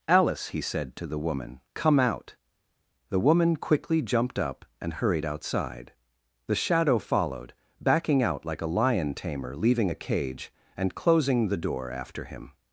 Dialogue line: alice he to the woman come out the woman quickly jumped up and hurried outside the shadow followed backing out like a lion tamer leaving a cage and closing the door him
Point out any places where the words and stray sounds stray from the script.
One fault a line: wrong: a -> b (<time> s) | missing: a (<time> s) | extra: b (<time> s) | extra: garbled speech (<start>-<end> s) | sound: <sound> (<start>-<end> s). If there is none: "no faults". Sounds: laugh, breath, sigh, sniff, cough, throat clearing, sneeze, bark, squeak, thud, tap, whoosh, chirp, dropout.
extra: said (0.6 s)
extra: after (11.9 s)